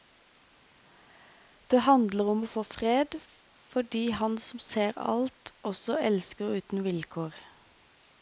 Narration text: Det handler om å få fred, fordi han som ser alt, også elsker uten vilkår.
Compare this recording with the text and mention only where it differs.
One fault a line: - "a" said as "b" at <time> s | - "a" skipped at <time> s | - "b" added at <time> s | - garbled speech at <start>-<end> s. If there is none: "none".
none